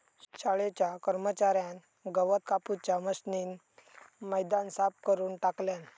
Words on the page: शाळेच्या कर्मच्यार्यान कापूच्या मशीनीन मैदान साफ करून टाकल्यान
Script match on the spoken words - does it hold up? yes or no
no